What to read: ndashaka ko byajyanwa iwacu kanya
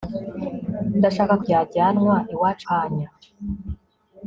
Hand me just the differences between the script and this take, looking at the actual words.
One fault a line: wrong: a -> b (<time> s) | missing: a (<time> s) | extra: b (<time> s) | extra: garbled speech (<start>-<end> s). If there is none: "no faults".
no faults